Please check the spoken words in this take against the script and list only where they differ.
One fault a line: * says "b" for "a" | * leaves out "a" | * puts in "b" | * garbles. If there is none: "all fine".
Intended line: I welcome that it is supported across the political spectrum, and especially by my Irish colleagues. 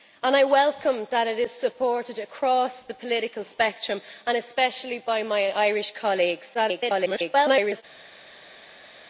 * garbles